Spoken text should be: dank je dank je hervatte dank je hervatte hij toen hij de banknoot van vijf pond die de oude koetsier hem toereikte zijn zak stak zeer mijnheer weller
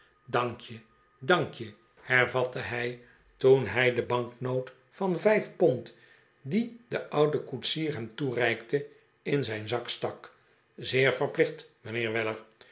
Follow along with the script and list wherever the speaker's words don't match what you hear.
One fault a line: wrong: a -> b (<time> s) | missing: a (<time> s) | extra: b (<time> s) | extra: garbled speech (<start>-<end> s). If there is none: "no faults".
missing: dank je hervatte (2.6 s)
extra: in (9.2 s)
extra: verplicht (11.1 s)